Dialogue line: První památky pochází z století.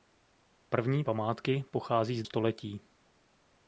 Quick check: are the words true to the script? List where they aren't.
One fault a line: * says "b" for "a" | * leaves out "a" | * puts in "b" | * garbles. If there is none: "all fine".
all fine